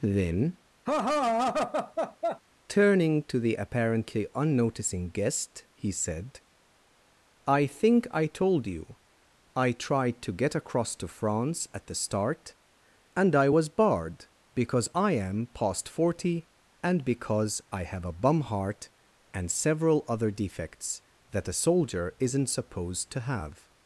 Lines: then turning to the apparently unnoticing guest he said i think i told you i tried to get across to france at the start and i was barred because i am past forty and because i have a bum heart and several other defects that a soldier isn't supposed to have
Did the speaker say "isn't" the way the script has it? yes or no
yes